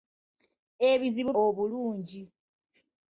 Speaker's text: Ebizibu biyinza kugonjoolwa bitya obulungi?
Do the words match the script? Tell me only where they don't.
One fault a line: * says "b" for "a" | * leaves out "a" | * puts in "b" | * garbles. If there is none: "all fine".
* leaves out "biyinza kugonjoolwa bitya"